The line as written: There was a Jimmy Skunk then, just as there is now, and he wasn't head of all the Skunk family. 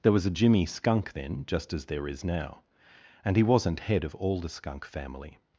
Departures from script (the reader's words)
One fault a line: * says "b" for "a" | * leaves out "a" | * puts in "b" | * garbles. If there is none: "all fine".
all fine